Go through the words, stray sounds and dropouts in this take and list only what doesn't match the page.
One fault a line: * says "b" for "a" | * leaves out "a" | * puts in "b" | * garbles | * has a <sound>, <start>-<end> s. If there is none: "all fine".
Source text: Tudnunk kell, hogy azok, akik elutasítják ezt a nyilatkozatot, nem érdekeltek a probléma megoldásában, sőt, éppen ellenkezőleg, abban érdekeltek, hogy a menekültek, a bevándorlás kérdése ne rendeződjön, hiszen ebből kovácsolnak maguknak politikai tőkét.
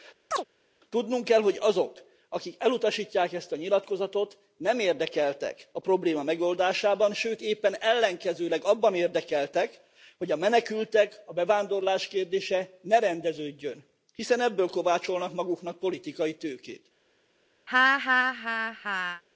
* has a chirp, 0.3-0.4 s
* has a laugh, 17.7-19.2 s